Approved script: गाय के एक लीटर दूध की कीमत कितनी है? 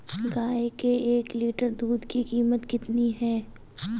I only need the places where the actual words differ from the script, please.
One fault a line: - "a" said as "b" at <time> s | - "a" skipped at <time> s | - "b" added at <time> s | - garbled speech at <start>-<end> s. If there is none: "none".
none